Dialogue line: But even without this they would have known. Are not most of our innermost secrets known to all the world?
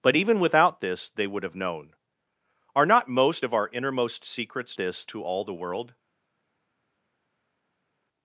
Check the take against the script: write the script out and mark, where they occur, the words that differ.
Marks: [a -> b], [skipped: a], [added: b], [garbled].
But even without this they would have known. Are not most of our innermost secrets [known -> this] to all the world?